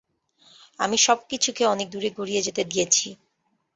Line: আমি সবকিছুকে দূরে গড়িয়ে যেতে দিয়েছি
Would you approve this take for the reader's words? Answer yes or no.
no